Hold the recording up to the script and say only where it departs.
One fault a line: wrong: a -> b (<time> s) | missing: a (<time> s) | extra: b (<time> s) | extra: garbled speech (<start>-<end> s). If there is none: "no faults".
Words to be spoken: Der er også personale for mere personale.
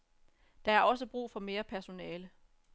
wrong: personale -> brug (1.1 s)